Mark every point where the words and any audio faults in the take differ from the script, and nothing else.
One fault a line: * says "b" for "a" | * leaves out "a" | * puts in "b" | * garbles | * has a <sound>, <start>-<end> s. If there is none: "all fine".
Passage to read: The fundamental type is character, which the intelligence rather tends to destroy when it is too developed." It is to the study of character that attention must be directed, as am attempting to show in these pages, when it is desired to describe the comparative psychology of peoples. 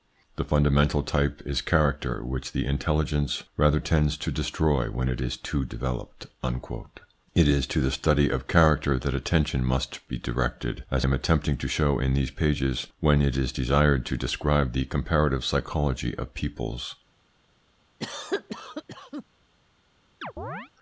* has a cough, 18.0-19.2 s
* has a chirp, 20.2-20.7 s